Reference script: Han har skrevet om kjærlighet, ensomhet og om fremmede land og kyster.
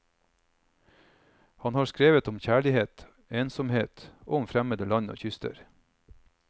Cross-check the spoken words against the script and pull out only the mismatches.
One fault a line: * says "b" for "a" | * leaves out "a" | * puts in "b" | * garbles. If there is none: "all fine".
all fine